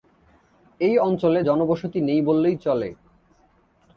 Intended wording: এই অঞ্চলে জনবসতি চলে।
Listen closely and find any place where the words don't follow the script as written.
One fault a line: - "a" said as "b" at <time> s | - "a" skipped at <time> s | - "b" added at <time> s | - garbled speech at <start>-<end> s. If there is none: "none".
- "নেই বললেই" added at 2.0 s